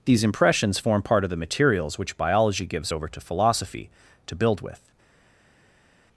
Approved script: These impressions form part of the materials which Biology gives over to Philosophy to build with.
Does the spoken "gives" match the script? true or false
true